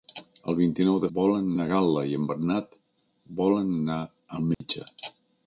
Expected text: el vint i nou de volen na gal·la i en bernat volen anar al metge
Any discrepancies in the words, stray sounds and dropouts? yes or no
yes